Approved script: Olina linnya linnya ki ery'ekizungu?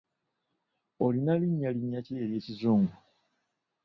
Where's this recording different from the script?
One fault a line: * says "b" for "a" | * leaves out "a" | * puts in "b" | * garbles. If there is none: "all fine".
all fine